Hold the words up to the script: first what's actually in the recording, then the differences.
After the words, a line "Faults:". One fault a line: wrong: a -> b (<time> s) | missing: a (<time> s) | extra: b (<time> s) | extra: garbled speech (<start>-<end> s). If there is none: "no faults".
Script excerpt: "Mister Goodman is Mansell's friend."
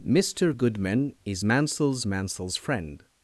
"Mister Goodman is Mansell's Mansell's friend."
Faults:
extra: Mansell's (2.0 s)